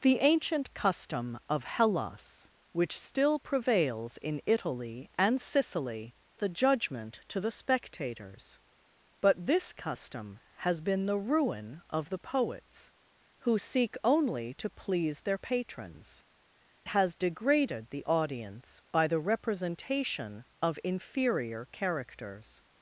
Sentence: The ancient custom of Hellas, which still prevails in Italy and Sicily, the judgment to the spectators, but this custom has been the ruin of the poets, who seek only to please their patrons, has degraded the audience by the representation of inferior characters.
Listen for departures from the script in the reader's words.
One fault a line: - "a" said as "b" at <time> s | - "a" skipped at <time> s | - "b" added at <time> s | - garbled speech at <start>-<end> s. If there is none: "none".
none